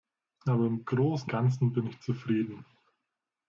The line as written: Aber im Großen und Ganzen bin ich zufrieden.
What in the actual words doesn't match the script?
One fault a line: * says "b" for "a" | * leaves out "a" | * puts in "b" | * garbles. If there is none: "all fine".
* leaves out "und"